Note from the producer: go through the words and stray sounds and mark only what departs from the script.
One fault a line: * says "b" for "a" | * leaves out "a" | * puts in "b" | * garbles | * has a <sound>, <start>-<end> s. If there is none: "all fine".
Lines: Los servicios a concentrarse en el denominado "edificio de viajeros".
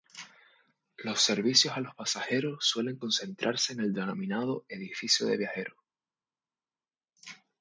* puts in "los pasajeros suelen"